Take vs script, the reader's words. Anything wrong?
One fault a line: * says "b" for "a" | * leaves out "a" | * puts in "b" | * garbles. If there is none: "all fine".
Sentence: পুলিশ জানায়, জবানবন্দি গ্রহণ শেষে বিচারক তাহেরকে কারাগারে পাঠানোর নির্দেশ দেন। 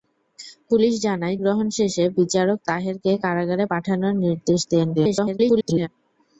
* leaves out "জবানবন্দি"
* garbles